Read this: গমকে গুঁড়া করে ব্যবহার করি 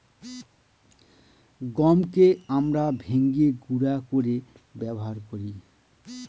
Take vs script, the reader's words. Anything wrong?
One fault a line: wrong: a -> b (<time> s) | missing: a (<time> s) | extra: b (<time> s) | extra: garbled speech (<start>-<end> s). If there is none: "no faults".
extra: আমরা ভেঙে (2.5 s)